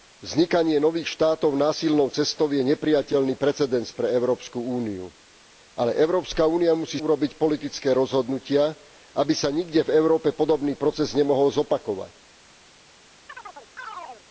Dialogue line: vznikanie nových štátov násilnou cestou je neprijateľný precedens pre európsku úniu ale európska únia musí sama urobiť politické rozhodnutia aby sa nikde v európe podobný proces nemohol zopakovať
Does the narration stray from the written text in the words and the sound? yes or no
yes